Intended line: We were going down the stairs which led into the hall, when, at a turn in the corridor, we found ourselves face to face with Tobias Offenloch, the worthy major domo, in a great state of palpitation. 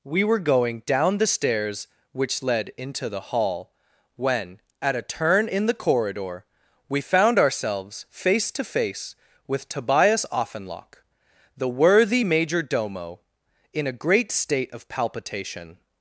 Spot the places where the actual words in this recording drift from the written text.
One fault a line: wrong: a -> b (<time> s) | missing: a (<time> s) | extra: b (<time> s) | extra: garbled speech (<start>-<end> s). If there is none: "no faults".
no faults